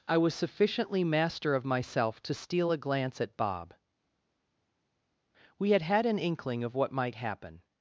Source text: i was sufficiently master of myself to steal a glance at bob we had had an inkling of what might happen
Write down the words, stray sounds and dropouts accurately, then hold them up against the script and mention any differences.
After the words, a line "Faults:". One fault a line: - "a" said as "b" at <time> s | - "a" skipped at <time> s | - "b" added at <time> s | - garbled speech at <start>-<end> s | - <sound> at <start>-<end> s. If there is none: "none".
i was sufficiently master of myself to steal a glance at bob we had had an inkling of what might happen
Faults:
none